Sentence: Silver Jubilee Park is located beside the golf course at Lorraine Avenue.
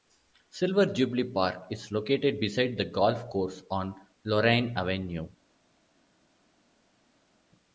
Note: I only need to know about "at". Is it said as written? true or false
false